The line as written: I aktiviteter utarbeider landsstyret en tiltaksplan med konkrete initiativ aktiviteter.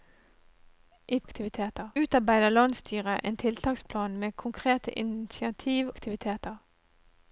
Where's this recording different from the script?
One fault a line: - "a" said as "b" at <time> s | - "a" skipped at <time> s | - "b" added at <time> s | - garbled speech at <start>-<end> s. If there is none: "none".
none